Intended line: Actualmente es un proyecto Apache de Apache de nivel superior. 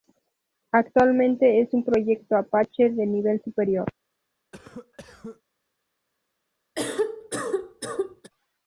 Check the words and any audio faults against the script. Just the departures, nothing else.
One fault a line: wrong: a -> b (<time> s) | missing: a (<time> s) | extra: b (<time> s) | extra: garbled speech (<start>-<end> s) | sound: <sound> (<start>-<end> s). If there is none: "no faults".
missing: Apache de (3.0 s)
sound: cough (4.5-5.4 s)
sound: cough (6.8-8.3 s)